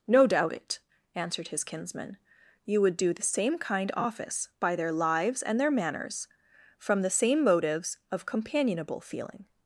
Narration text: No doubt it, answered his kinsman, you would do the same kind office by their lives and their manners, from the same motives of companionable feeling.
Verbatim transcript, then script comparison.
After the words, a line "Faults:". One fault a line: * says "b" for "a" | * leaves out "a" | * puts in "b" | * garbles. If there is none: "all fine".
No doubt it, answered his kinsman, you would do the same kind office by their lives and their manners, from the same motives of companionable feeling.
Faults:
all fine